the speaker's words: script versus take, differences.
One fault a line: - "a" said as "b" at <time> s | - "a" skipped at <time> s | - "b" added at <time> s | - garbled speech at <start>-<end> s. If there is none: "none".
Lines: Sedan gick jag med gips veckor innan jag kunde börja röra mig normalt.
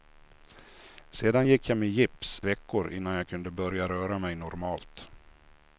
none